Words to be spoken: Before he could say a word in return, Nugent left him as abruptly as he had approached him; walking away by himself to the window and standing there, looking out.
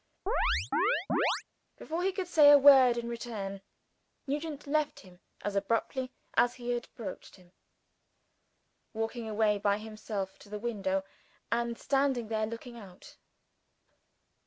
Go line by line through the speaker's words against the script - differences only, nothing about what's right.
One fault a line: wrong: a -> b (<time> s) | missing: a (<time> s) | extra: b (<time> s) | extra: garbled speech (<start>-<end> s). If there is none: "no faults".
no faults